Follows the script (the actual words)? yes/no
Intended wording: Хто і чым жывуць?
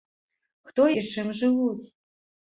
yes